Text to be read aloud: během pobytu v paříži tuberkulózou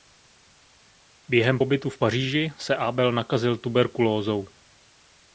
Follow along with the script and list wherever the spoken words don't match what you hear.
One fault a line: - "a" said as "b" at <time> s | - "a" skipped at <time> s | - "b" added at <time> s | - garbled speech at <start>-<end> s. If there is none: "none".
- "se abel nakazil" added at 2.6 s